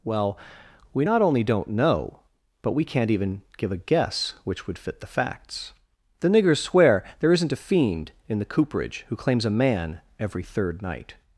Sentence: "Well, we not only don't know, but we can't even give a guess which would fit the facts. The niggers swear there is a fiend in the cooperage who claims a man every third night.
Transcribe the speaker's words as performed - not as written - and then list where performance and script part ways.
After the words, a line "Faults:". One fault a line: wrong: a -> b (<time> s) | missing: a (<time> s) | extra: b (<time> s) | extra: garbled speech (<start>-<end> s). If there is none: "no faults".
"Well, we not only don't know, but we can't even give a guess which would fit the facts. The niggers swear there isn't a fiend in the cooperage who claims a man every third night.
Faults:
wrong: is -> isn't (7.3 s)